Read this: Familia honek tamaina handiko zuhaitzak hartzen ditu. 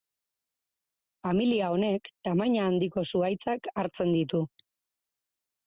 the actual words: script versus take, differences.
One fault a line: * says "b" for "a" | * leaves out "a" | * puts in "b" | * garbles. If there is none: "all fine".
all fine